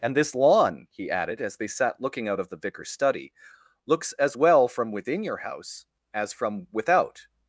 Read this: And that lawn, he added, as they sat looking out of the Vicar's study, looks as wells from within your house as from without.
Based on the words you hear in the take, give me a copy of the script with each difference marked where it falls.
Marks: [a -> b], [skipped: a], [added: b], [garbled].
And [that -> this] lawn, he added, as they sat looking out of the Vicar's study, looks as [wells -> well] from within your house as from without.